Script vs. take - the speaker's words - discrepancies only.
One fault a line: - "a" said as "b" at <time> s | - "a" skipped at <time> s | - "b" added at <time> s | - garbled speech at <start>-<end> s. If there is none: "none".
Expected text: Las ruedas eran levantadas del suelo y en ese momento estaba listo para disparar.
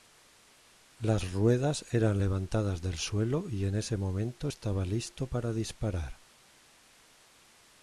none